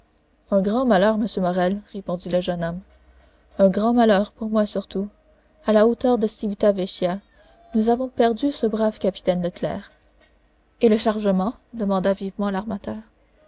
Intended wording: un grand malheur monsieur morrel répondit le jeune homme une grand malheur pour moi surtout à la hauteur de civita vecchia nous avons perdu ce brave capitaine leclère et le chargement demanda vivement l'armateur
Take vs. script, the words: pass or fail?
fail